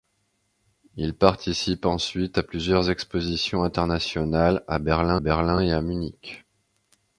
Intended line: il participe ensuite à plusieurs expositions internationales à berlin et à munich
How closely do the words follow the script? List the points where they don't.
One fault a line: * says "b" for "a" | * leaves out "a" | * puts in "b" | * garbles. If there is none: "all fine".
* puts in "berlin"